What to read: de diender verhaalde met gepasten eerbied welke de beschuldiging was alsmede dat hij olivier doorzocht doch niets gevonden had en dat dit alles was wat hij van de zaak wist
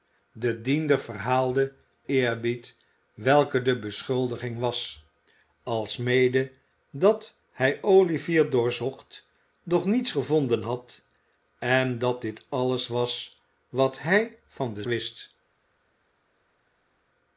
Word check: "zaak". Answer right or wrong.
wrong